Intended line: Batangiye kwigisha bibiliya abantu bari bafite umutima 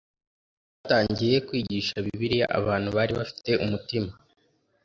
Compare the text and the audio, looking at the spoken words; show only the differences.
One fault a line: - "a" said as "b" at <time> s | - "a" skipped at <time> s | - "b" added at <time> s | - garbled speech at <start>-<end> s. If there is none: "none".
none